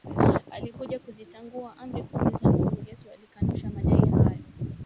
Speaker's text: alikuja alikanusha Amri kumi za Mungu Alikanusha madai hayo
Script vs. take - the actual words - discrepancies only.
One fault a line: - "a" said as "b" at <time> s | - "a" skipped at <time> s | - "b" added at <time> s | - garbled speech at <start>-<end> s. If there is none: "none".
- "alikanusha" said as "kuzitangua" at 1.0 s
- "Yesu" added at 2.9 s